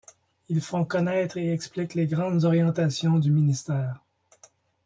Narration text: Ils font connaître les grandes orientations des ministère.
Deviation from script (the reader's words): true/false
true